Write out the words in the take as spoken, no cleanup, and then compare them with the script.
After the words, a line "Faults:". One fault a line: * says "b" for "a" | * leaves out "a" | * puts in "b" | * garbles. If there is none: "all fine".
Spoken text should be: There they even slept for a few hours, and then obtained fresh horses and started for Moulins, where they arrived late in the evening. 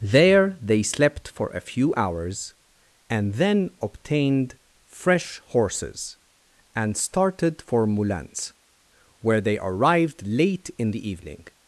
There they slept for a few hours, and then obtained fresh horses and started for Moulins, where they arrived late in the evening.
Faults:
* leaves out "even"